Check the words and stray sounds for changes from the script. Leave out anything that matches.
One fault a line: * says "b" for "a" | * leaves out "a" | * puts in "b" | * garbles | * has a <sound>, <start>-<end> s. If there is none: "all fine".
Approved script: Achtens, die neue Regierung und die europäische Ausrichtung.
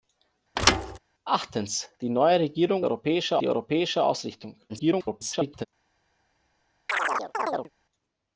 * has a thud, 0.6-1.0 s
* says "europäische" for "und"
* garbles
* has a chirp, 6.9-7.7 s